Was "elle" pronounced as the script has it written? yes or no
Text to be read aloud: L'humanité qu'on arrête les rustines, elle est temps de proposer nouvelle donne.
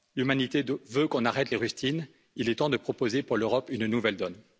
no